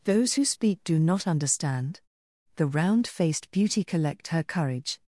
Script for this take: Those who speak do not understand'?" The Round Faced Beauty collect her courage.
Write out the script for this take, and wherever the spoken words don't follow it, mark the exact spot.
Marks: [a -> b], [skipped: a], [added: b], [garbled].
Those who speak do not understand'?" The Round Faced Beauty collect her courage.